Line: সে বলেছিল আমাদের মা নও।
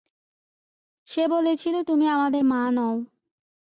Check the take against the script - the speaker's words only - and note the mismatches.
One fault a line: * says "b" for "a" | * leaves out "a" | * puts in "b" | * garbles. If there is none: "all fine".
* puts in "তুমি"